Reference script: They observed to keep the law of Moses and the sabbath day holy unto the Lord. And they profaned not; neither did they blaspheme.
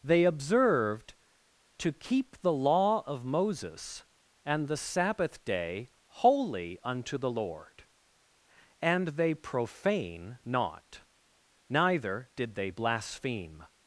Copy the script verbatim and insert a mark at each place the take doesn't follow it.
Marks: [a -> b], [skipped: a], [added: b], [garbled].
They observed to keep the law of Moses and the sabbath day holy unto the Lord. And they [profaned -> profane] not; neither did they blaspheme.